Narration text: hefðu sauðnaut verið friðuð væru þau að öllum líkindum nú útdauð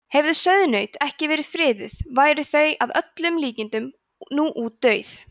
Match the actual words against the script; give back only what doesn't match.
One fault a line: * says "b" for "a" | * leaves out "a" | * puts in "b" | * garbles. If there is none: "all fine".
* puts in "ekki"